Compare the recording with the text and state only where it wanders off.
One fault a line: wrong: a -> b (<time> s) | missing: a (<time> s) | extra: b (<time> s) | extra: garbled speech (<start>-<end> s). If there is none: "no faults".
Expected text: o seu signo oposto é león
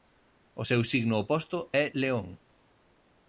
no faults